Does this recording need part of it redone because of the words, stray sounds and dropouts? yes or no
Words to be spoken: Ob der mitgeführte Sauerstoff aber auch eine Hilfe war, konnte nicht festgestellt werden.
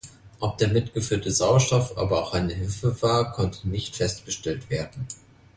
no